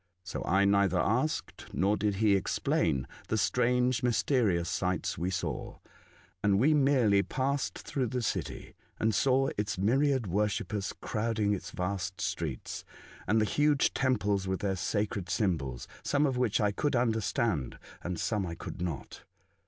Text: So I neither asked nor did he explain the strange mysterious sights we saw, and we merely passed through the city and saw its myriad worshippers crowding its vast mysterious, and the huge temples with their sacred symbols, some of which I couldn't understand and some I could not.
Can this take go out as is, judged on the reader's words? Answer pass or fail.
fail